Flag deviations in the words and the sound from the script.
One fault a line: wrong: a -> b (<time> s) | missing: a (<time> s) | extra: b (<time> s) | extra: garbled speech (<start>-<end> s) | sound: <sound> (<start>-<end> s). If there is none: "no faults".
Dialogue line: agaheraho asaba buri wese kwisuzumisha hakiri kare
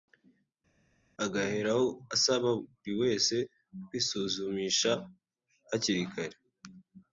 no faults